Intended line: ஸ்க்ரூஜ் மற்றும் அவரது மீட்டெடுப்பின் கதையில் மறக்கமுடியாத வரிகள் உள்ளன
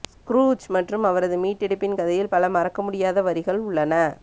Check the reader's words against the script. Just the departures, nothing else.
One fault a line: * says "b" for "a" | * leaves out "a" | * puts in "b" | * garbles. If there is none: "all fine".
* puts in "பல"